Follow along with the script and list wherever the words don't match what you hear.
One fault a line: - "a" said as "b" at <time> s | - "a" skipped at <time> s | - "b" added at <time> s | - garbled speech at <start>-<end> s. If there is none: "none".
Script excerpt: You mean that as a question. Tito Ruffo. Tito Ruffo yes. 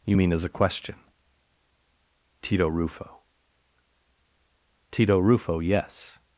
- "that" skipped at 0.3 s